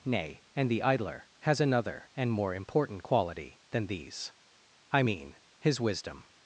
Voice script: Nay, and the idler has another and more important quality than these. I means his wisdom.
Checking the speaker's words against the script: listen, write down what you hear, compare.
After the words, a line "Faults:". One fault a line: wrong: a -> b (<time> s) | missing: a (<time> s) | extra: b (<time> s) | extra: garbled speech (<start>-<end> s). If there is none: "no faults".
Nay, and the idler has another and more important quality than these. I mean his wisdom.
Faults:
wrong: means -> mean (5.0 s)